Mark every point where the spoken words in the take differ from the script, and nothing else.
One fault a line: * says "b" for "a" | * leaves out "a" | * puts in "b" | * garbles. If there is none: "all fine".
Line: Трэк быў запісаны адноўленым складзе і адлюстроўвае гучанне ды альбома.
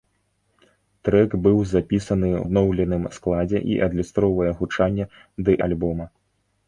all fine